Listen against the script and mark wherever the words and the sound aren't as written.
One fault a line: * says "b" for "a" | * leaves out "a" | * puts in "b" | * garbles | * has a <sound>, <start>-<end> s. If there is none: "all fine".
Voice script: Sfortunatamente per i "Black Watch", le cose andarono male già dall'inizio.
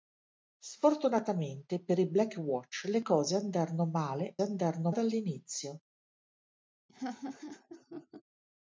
* says "andarono" for "già"
* has a laugh, 6.9-8.2 s